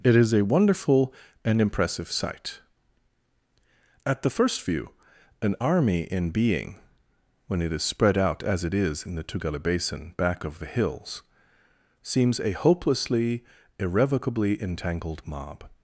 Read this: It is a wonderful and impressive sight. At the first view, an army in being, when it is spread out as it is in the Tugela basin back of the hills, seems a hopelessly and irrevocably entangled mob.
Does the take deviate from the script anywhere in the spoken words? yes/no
yes